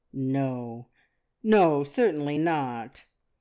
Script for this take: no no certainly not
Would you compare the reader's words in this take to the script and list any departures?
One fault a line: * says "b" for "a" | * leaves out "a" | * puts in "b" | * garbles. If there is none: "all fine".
all fine